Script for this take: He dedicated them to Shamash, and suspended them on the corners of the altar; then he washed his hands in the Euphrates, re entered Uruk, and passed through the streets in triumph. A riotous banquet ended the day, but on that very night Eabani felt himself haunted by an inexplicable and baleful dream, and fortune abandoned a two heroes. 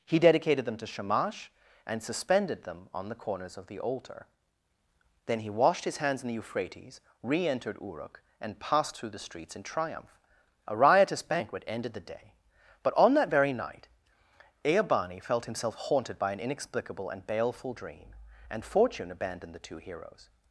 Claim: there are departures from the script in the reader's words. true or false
true